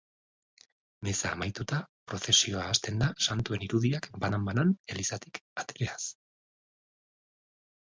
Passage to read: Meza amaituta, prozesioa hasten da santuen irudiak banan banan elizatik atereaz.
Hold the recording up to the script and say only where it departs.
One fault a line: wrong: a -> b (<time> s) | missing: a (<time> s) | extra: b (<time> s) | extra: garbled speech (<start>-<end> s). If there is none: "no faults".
no faults